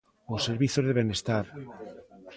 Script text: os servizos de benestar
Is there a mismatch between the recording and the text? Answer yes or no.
no